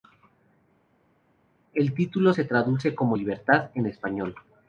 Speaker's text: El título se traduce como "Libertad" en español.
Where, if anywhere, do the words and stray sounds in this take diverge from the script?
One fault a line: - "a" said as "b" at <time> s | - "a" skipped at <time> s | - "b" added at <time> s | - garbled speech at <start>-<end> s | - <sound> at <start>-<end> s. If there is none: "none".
none